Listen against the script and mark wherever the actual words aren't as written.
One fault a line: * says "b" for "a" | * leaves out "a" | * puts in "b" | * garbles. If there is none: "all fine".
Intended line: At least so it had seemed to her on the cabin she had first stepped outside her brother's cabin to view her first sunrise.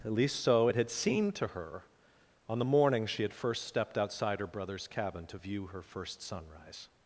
* says "morning" for "cabin"